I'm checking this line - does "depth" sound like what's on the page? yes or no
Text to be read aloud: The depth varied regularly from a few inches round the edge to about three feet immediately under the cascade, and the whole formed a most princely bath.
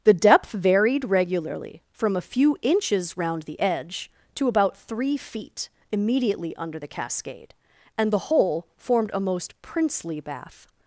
yes